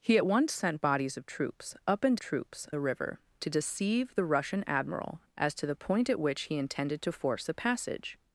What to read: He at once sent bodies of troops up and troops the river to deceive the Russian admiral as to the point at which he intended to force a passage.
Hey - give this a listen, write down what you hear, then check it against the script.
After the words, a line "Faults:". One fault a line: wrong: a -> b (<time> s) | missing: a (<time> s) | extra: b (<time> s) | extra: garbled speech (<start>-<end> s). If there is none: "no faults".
He at once sent bodies of troops up and troops the river to deceive the Russian admiral as to the point at which he intended to force a passage.
Faults:
no faults